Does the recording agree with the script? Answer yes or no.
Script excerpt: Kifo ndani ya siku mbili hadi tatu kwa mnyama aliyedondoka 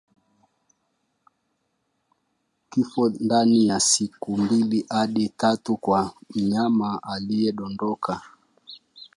yes